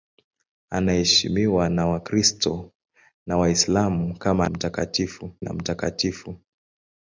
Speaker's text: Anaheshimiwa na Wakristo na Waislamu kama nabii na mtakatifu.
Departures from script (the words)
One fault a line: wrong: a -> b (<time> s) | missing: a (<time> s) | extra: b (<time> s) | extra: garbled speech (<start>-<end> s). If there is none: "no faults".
wrong: nabii -> mtakatifu (4.5 s)